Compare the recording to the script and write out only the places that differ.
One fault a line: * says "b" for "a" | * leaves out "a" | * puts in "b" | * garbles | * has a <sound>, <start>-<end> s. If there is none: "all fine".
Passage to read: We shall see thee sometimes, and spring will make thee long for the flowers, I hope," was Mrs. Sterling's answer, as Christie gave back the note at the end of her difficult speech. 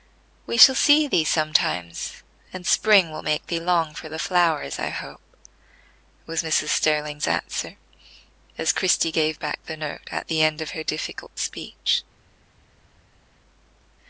all fine